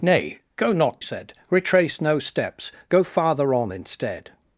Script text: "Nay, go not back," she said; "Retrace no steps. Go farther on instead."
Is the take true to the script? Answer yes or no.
no